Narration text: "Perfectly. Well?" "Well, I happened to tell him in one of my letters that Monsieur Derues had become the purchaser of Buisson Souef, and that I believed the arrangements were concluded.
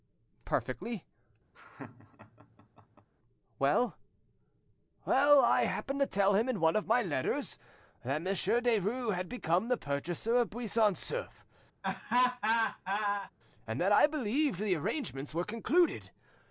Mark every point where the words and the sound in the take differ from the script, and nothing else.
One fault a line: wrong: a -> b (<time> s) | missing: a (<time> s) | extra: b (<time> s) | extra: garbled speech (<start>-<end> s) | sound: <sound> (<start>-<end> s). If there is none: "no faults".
sound: laugh (1.5-3.1 s)
sound: laugh (11.8-13.3 s)